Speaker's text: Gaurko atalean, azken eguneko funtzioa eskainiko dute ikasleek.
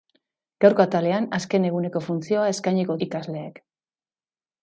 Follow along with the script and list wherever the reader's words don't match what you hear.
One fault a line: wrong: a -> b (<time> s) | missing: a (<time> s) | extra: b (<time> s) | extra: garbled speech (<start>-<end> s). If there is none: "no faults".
missing: dute (3.0 s)